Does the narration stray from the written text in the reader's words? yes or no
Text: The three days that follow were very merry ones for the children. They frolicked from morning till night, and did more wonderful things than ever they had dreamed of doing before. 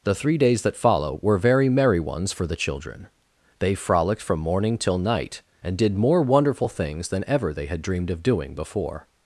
no